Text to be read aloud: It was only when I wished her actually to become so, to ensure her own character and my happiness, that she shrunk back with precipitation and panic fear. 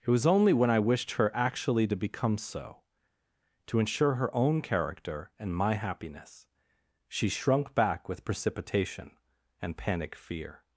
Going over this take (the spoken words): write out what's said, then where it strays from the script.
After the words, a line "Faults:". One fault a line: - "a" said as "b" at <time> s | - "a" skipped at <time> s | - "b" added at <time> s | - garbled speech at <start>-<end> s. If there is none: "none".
It was only when I wished her actually to become so, to ensure her own character and my happiness, she shrunk back with precipitation and panic fear.
Faults:
- "that" skipped at 6.5 s